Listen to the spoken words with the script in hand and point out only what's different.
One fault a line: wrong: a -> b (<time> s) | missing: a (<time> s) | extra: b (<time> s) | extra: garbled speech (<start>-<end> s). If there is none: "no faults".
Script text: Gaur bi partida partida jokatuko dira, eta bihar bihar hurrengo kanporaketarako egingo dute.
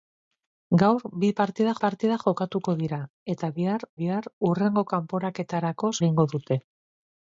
no faults